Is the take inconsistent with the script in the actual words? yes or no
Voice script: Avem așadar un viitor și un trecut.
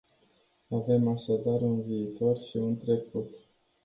no